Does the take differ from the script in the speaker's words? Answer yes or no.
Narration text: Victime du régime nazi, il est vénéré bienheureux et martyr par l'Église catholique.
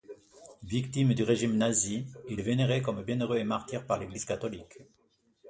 yes